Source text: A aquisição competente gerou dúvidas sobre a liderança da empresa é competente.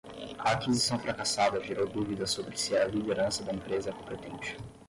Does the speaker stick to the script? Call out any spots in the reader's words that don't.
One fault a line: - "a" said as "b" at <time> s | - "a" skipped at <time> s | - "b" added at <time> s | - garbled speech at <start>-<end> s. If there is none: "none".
- "competente" said as "fracassada" at 1.0 s
- "se" added at 2.6 s